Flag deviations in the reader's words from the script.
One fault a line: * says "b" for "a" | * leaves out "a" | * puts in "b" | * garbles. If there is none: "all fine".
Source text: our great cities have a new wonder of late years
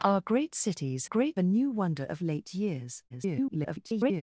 * says "great" for "have"
* garbles